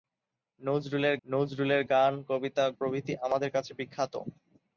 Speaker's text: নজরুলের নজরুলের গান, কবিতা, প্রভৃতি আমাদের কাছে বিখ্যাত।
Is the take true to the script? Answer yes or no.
yes